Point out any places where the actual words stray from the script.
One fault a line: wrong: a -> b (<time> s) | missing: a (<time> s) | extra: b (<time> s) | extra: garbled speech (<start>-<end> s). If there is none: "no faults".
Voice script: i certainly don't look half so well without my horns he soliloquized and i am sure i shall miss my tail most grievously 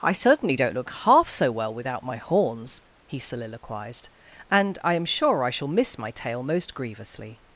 no faults